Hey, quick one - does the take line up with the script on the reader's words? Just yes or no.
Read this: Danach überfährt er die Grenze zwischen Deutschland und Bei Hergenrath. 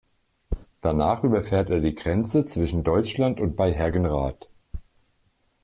yes